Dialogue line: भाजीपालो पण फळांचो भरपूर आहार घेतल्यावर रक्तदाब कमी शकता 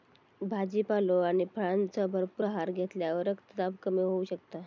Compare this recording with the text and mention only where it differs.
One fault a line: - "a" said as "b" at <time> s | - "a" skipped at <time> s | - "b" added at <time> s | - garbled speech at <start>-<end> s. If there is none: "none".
- "पण" said as "आणि" at 1.2 s
- "होऊ" added at 4.0 s